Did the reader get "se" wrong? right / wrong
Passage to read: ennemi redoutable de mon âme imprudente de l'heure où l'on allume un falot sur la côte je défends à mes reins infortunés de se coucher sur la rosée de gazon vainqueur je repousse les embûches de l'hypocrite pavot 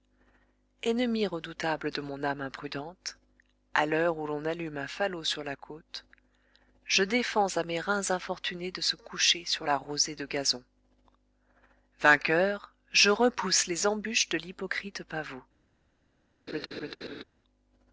right